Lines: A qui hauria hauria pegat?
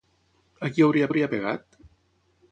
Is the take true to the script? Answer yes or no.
yes